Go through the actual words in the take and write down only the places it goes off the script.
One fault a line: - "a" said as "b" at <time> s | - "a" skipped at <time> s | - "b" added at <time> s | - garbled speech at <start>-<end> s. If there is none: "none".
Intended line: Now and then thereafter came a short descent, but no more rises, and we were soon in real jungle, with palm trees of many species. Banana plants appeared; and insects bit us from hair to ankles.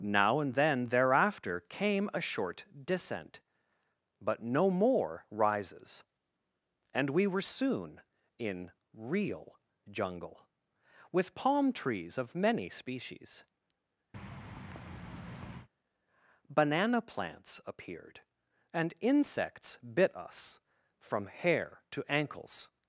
none